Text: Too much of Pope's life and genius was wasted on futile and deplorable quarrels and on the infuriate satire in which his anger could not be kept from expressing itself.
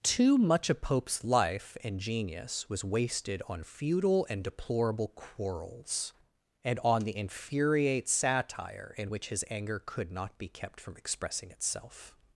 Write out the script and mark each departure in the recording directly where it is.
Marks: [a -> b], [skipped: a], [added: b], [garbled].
Too much of Pope's life and genius was wasted on futile and deplorable quarrels and on the infuriate satire in which his anger could not be kept from expressing itself.